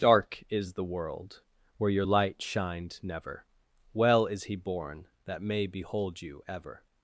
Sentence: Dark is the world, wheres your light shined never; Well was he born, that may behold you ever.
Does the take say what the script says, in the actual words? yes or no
no